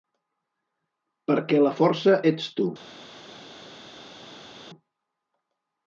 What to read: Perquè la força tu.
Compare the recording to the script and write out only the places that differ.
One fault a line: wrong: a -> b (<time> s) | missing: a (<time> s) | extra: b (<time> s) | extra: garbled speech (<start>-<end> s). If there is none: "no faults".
extra: ets (2.3 s)